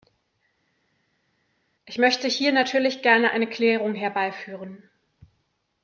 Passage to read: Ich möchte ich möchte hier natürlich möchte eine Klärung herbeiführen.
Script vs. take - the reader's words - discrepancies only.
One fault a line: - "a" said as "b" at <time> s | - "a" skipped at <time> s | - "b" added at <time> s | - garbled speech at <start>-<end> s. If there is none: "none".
- "ich möchte" skipped at 2.3 s
- "möchte" said as "gerne" at 3.0 s